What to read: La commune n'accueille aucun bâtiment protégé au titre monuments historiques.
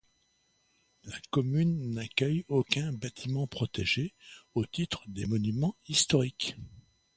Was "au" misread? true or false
false